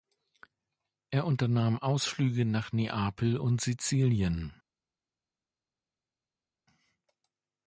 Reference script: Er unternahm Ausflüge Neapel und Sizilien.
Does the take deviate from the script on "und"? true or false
false